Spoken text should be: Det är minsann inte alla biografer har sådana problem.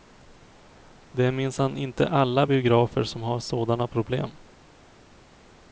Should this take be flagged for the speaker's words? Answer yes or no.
yes